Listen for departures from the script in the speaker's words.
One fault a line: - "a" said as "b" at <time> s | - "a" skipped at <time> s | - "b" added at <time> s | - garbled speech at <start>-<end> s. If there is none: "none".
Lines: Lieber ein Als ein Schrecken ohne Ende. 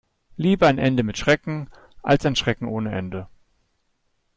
- "Ende mit Schrecken" added at 0.8 s